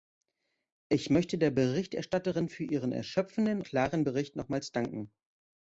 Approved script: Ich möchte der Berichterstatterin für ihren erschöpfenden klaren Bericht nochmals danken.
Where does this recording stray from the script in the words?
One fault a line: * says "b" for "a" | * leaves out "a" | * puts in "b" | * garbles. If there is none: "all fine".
all fine